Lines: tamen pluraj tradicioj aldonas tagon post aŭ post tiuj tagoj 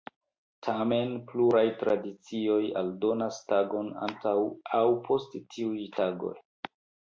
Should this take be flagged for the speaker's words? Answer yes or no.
yes